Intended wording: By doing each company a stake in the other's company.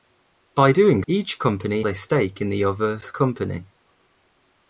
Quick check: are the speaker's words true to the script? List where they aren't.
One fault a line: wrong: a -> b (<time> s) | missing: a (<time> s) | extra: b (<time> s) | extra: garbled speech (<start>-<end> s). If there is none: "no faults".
no faults